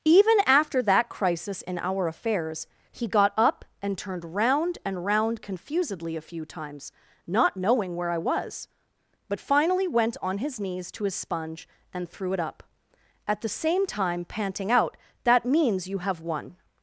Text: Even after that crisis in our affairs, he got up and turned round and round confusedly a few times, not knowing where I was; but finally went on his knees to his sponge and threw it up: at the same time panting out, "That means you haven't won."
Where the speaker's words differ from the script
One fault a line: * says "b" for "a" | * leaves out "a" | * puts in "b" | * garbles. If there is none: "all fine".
* says "have" for "haven't"